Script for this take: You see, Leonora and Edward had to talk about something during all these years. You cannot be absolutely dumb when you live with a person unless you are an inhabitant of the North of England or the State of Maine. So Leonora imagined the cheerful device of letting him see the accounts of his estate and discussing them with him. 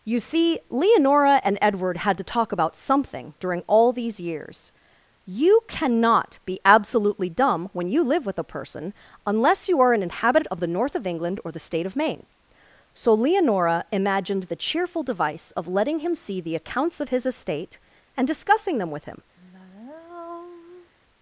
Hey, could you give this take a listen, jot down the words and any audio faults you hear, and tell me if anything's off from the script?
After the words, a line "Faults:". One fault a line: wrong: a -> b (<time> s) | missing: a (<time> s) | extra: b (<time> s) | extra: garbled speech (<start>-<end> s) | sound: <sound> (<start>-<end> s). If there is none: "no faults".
You see, Leonora and Edward had to talk about something during all these years. You cannot be absolutely dumb when you live with a person unless you are an inhabitant of the North of England or the State of Maine. So Leonora imagined the cheerful device of letting him see the accounts of his estate and discussing them with him.
Faults:
sound: sigh (19.4-20.9 s)